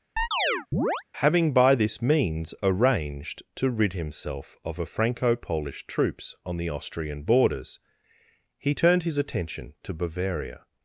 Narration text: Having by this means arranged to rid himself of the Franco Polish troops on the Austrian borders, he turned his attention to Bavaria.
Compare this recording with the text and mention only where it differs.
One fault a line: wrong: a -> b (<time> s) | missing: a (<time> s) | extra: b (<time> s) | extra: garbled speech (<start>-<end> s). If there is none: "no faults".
wrong: the -> a (4.8 s)